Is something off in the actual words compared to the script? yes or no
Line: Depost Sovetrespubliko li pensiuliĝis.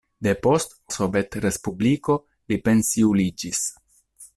no